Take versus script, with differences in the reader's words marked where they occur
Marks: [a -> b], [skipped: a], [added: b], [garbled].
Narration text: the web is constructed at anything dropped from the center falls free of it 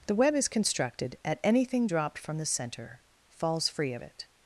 the web is constructed at anything dropped from the center falls free of it